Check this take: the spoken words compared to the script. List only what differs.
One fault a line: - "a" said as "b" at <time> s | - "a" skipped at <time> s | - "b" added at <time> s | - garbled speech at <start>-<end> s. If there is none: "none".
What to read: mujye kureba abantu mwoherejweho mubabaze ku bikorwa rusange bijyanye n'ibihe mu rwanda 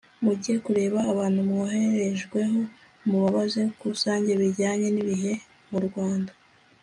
- "bikorwa" skipped at 3.9 s